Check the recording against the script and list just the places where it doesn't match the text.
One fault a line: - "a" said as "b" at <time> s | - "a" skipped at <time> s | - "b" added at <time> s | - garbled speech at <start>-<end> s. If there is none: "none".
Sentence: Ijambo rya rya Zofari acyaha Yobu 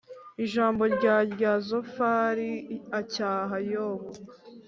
none